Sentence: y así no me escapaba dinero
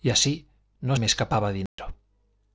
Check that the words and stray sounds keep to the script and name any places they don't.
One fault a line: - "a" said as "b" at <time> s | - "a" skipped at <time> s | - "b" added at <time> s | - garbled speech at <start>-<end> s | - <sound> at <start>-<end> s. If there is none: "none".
- dropout at 1.7-1.8 s